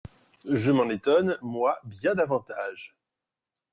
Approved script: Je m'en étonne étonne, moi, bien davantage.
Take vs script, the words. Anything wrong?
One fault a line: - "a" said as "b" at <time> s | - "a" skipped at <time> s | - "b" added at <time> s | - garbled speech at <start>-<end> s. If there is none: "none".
- "étonne" skipped at 1.4 s